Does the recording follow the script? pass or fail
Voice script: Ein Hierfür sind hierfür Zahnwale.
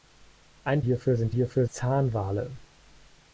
pass